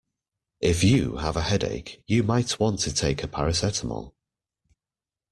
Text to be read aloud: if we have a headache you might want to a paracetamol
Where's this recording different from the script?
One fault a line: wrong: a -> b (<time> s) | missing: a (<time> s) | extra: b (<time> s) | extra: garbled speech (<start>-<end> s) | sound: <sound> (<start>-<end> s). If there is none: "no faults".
wrong: we -> you (0.8 s)
extra: take (2.9 s)